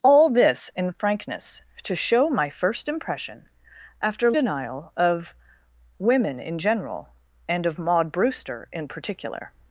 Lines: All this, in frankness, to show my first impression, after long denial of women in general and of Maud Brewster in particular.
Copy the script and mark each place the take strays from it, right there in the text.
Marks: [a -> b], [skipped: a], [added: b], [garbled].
All this, in frankness, to show my first impression, after [skipped: long] denial of women in general and of Maud Brewster in particular.